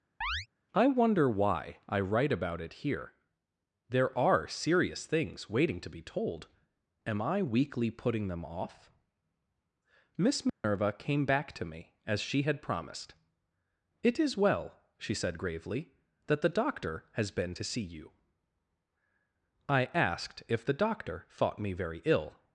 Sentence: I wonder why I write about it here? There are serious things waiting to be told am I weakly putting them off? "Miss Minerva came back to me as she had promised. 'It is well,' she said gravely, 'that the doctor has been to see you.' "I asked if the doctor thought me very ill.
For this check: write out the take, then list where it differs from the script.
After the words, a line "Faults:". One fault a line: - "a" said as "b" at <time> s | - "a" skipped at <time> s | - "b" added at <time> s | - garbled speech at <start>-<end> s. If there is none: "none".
I wonder why I write about it here? There are serious things waiting to be told am I weakly putting them off? "Miss Minerva came back to me as she had promised. 'It is well,' she said gravely, 'that the doctor has been to see you.' "I asked if the doctor thought me very ill.
Faults:
none